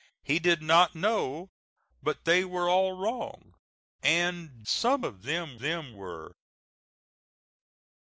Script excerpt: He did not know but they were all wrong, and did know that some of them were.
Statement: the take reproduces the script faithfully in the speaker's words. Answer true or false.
false